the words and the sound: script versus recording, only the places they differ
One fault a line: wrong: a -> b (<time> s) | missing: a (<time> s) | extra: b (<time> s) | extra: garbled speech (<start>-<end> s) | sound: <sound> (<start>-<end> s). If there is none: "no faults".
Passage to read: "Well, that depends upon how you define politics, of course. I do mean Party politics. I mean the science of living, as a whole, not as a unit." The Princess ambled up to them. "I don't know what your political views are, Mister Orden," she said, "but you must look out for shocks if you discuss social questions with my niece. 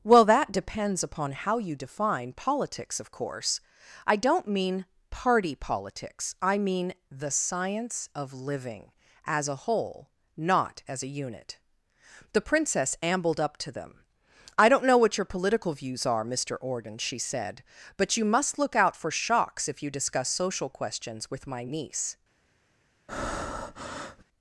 wrong: do -> don't (4.2 s)
sound: breath (23.1-24.2 s)